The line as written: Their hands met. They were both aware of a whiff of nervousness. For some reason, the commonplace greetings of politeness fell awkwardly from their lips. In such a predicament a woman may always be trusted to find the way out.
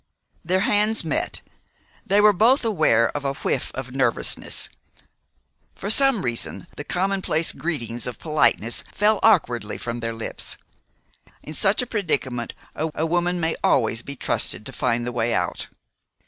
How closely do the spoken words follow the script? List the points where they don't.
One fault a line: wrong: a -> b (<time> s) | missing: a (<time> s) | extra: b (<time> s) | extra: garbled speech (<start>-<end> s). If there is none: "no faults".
extra: a (12.9 s)